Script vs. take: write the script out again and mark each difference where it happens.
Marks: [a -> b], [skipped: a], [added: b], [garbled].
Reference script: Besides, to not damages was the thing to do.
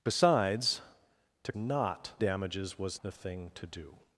Besides, to not damages was the thing to do.